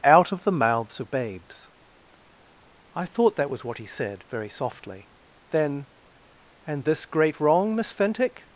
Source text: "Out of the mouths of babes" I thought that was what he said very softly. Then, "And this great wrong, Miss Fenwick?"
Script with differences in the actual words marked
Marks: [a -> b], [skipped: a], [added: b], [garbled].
"Out of the mouths of babes" I thought that was what he said very softly. Then, "And this great wrong, Miss Fenwick?"